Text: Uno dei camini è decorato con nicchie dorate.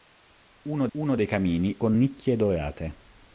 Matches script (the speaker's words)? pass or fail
fail